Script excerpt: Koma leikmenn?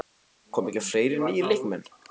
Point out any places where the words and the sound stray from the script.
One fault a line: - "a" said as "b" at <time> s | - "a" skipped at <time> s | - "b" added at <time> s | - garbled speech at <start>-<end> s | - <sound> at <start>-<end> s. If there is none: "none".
- "ekki fleiri nýir" added at 0.7 s